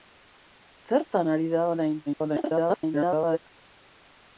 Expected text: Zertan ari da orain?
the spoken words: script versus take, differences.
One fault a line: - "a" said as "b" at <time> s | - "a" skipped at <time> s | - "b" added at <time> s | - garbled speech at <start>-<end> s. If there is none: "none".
- garbled speech at 2.1-3.4 s